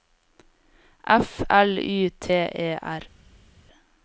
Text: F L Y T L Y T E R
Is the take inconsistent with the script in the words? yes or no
yes